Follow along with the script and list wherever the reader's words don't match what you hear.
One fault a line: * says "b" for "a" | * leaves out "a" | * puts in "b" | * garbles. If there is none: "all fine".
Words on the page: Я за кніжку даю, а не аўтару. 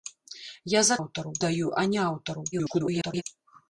* says "аўтару" for "кніжку"
* garbles